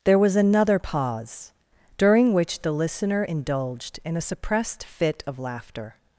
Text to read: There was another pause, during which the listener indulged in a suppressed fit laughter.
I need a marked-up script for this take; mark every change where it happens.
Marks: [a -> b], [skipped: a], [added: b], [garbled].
There was another pause, during which the listener indulged in a suppressed fit [added: of] laughter.